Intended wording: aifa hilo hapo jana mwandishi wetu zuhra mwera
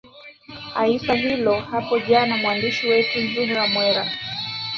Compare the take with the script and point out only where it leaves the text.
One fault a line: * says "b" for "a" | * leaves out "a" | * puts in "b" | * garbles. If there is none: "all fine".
all fine